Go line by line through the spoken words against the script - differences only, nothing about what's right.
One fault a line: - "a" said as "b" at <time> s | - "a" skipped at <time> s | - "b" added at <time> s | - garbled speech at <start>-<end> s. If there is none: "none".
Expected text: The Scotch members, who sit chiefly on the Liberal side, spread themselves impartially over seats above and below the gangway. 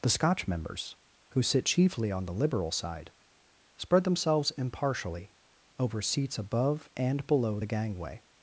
none